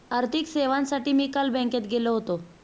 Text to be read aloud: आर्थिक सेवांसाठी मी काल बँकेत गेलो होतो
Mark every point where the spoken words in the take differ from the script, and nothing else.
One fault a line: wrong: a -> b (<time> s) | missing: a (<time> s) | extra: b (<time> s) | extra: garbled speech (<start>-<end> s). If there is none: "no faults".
no faults